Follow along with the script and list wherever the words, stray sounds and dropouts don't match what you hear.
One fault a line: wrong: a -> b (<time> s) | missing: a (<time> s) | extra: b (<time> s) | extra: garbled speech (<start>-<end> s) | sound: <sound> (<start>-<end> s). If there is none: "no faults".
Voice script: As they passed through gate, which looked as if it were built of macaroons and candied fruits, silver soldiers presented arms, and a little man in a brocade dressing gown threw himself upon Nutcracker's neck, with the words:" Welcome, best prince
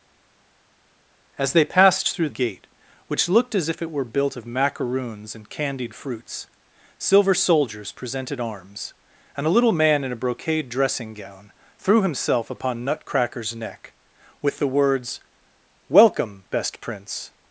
no faults